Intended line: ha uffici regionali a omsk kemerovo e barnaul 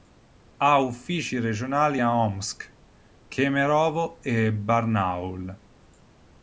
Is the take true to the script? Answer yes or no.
yes